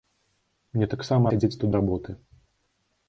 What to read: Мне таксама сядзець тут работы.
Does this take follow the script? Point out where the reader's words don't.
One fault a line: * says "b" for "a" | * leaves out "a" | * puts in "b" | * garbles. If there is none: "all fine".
all fine